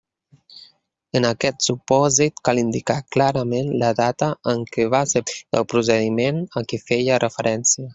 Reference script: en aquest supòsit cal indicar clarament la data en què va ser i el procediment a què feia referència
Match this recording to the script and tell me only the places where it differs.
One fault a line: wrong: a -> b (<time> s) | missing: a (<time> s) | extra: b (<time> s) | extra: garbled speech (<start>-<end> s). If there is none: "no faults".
no faults